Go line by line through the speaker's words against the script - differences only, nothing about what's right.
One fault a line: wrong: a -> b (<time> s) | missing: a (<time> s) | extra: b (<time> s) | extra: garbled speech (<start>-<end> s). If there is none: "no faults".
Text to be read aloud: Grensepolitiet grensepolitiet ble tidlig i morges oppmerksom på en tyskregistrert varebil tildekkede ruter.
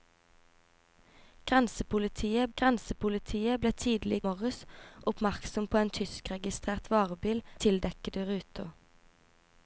no faults